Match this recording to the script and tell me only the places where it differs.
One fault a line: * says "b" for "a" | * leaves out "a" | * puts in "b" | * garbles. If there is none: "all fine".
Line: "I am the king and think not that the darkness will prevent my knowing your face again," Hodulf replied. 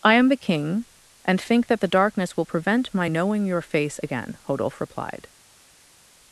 * leaves out "not"